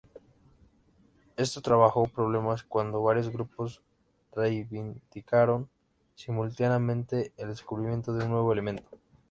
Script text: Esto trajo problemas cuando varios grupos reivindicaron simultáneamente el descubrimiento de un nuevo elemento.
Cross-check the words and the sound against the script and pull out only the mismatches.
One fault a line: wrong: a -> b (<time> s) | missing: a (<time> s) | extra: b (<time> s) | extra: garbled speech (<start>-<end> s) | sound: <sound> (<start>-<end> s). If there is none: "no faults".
no faults